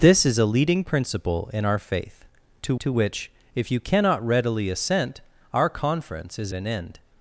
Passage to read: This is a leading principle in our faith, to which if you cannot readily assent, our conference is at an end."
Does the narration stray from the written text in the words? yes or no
yes